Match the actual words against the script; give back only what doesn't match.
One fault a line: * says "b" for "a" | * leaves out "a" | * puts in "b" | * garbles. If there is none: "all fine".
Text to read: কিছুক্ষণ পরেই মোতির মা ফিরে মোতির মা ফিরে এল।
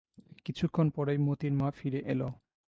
* leaves out "মোতির মা ফিরে"